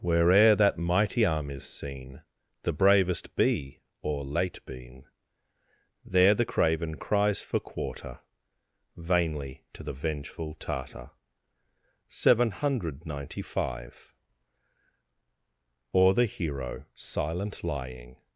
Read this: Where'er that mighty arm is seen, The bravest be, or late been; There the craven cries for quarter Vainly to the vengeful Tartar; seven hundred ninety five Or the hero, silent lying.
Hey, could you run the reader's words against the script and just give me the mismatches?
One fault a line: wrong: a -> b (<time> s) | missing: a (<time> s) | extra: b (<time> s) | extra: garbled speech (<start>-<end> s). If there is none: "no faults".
no faults